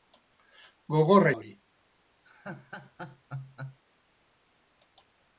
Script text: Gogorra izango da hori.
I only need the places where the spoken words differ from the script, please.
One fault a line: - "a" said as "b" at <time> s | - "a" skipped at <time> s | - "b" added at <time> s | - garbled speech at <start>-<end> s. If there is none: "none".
- "izango" skipped at 1.4 s